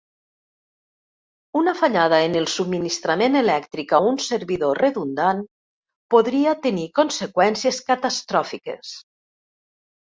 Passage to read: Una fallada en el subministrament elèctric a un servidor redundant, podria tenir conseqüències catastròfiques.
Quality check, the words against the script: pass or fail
pass